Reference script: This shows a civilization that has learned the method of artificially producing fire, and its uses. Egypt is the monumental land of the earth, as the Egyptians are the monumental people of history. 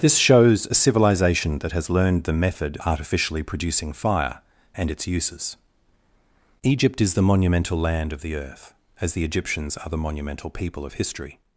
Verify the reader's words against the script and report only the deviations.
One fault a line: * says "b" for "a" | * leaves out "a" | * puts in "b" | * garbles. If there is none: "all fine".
* leaves out "of"